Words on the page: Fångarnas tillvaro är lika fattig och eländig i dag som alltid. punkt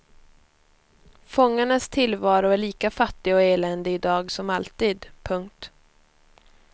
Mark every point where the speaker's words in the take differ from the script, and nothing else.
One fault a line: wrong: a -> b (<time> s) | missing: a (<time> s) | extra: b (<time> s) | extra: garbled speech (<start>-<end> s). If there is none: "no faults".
no faults